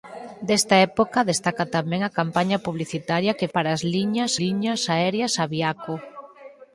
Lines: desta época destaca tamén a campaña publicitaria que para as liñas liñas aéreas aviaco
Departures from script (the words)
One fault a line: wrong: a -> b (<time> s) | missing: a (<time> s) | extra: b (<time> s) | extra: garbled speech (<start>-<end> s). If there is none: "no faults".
no faults